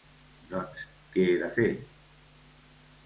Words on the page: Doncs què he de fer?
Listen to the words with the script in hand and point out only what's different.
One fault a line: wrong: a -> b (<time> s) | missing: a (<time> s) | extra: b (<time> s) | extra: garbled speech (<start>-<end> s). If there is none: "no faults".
no faults